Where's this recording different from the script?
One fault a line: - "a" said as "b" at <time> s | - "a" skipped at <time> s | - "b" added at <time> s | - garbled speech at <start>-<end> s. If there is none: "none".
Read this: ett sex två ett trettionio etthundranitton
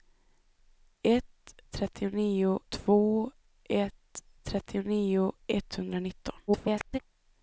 - "sex" said as "trettionio" at 1.7 s
- garbled speech at 6.5-7.0 s